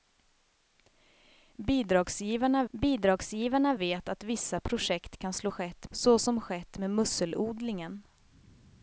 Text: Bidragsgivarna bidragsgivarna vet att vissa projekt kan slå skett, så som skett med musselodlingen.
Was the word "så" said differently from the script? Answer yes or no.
no